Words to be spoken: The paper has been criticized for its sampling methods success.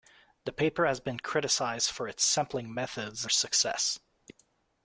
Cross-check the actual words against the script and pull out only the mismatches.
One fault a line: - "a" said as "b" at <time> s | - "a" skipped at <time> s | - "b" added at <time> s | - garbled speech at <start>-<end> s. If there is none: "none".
none